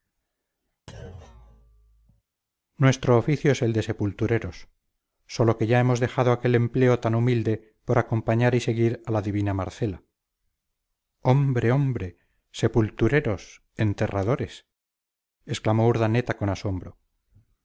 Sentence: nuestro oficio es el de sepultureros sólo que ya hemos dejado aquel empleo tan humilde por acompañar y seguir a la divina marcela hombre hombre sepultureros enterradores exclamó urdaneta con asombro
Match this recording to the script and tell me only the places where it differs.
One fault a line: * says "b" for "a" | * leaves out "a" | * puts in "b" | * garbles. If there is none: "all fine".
all fine